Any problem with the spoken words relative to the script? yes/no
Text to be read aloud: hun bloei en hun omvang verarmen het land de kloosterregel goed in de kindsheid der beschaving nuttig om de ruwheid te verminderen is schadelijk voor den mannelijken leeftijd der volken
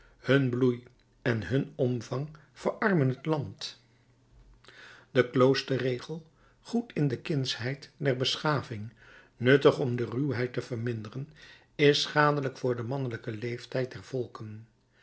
no